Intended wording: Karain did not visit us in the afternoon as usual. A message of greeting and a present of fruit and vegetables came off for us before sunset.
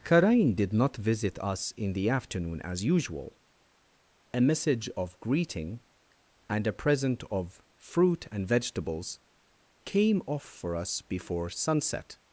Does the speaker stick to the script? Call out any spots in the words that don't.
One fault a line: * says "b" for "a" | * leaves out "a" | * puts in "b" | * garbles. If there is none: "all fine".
all fine